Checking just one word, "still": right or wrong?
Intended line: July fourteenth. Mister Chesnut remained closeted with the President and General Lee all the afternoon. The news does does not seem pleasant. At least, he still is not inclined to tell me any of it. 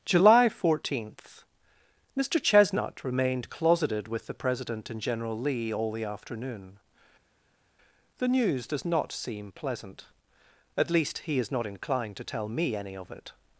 wrong